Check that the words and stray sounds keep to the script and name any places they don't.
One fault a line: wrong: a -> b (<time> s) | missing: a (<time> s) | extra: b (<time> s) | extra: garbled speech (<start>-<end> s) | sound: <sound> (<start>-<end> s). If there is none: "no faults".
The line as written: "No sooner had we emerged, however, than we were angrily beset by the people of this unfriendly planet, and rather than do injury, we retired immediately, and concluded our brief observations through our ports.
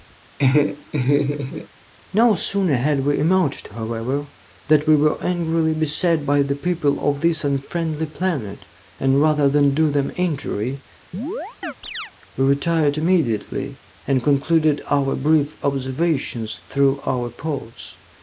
sound: laugh (0.4-1.7 s)
extra: them (9.9 s)
sound: chirp (11.1-12.1 s)